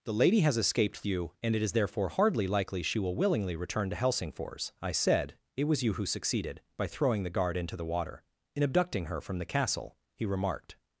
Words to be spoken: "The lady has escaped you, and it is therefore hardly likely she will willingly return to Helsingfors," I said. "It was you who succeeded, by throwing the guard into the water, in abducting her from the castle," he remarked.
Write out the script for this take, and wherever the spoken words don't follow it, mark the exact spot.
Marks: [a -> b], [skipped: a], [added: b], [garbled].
"The lady has escaped you, and it is therefore hardly likely she will willingly return to Helsingfors," I said. "It was you who succeeded, by throwing the guard into the water, in abducting her from the castle," he remarked.